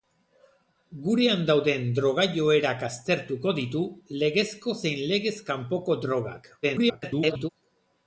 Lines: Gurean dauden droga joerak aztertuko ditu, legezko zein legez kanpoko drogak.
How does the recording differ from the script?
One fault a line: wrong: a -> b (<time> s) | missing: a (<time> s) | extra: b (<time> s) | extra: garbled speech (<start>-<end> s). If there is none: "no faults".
extra: garbled speech (6.6-7.5 s)